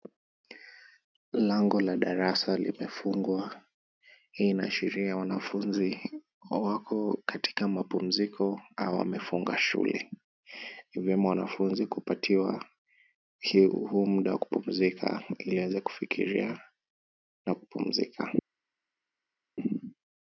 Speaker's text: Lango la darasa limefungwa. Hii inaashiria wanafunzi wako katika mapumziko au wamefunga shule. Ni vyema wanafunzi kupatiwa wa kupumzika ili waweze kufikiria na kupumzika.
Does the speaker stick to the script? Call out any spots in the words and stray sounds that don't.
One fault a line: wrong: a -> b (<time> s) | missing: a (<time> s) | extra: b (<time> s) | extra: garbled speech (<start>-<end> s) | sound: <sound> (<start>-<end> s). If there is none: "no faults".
extra: huu muda (13.7 s)